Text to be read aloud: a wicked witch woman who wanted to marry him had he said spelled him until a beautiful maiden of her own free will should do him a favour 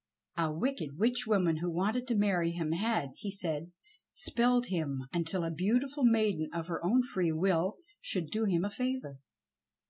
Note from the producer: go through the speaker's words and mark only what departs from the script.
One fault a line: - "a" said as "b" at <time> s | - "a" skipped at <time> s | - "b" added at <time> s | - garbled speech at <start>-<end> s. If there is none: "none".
none